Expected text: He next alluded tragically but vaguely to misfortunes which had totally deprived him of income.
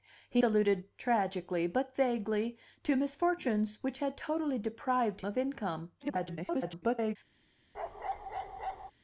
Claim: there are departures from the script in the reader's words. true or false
true